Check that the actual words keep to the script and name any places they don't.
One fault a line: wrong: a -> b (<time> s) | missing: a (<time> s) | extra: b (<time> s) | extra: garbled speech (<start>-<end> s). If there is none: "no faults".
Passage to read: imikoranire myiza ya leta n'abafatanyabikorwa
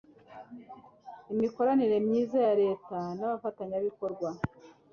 no faults